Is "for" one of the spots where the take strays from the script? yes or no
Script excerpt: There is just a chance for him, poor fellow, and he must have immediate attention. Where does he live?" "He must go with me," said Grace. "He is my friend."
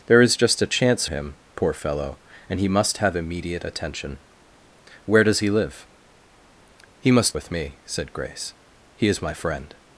yes